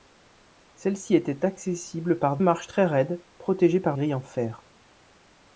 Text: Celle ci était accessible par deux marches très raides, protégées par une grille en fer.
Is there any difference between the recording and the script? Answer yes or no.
yes